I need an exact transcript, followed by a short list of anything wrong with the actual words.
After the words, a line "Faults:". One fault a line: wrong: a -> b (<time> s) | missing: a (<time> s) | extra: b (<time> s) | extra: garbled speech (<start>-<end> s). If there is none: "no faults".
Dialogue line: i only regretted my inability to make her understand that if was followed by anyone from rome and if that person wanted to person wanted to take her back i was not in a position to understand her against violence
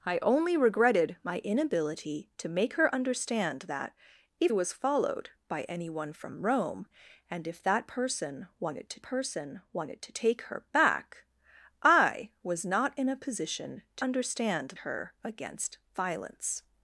i only regretted my inability to make her understand that if was followed by anyone from rome and if that person wanted to person wanted to take her back i was not in a position to understand her against violence
Faults:
no faults